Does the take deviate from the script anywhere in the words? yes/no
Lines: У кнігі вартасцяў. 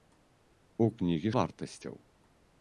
no